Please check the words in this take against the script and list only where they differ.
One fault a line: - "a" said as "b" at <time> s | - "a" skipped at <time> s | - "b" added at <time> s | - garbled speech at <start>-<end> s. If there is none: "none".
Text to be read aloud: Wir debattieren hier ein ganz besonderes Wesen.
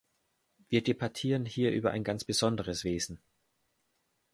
- "über" added at 1.7 s